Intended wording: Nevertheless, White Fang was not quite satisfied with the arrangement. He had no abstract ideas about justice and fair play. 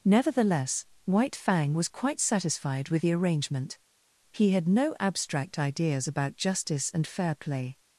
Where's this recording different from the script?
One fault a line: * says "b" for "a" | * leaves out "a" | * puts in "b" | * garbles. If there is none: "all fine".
* leaves out "not"